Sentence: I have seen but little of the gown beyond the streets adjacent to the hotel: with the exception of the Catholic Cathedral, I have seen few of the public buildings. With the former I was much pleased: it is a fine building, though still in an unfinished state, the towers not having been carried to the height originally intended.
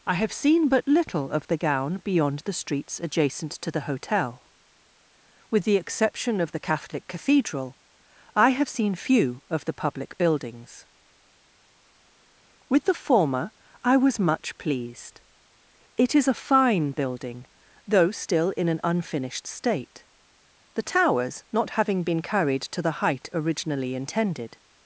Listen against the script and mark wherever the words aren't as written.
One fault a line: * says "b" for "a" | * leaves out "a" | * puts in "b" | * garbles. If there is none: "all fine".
all fine